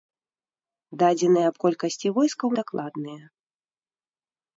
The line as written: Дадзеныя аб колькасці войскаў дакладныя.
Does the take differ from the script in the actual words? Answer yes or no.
no